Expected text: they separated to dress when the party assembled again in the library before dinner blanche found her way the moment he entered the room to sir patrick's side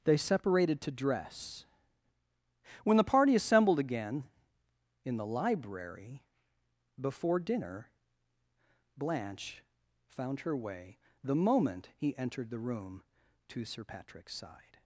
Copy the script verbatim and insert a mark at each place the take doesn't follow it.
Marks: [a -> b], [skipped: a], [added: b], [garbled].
they separated to dress when the party assembled again in the library before dinner blanche found her way the moment he entered the room to sir patrick's side